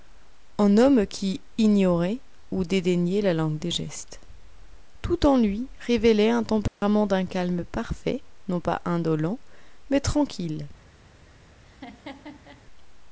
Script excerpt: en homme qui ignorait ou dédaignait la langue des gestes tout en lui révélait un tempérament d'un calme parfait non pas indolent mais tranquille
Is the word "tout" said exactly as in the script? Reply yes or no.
yes